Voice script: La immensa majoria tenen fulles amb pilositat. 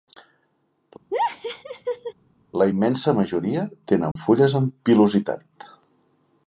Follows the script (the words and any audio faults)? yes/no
no